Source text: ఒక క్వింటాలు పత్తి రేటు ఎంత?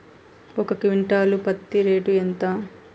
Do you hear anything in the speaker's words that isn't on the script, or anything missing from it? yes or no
no